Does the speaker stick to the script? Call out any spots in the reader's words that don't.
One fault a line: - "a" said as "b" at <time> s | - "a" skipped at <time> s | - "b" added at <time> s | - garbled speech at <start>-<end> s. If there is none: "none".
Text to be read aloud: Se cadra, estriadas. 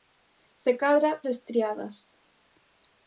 none